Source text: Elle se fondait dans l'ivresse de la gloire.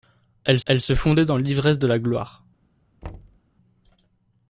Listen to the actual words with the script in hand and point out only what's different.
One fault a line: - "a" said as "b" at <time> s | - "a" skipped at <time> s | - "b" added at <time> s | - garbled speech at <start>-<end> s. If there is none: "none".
- "elle" added at 0.7 s